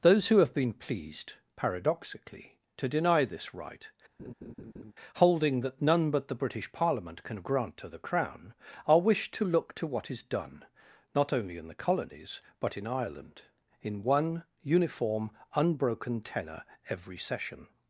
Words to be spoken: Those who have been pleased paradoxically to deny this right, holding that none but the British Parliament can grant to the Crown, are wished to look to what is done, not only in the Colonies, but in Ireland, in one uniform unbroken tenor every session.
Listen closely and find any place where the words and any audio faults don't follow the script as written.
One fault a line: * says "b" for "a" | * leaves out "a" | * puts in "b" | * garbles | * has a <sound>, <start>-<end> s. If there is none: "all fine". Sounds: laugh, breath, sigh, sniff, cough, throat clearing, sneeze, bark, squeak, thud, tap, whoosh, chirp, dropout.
* has a laugh, 4.2-4.9 s